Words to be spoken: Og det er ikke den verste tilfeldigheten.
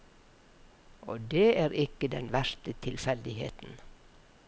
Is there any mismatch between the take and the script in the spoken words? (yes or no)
no